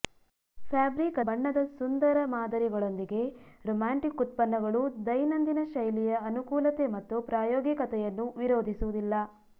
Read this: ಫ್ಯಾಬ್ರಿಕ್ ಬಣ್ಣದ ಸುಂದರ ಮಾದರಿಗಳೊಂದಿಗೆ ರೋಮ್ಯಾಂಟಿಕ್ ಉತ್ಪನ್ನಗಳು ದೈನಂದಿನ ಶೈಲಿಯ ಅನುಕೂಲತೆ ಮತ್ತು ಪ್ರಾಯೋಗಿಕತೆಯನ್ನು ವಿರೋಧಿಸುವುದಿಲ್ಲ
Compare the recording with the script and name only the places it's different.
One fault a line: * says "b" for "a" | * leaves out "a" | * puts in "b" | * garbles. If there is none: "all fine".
all fine